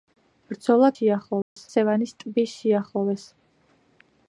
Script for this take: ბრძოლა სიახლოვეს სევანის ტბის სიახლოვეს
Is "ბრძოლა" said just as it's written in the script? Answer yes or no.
yes